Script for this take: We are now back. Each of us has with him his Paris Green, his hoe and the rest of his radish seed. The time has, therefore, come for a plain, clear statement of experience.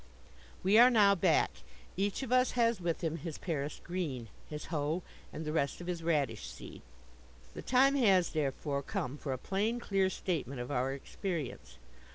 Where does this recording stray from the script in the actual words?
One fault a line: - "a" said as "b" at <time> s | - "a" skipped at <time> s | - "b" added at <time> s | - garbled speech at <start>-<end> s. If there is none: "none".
- "our" added at 10.7 s